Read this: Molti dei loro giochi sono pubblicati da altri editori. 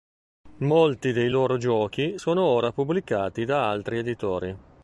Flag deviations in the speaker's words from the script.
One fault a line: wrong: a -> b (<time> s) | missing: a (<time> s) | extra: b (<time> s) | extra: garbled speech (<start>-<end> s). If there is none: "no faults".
extra: ora (2.4 s)